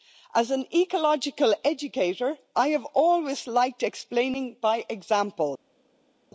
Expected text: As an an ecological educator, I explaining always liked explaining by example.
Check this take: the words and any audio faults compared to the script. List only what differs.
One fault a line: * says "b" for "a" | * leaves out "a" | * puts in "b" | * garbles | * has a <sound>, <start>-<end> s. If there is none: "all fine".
* leaves out "an"
* says "have" for "explaining"